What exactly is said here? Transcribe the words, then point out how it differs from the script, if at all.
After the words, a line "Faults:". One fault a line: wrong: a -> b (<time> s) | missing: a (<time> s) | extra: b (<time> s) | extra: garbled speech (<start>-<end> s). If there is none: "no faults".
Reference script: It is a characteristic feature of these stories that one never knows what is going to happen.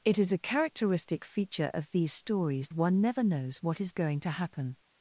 It is a characteristic feature of these stories one never knows what is going to happen.
Faults:
missing: that (2.7 s)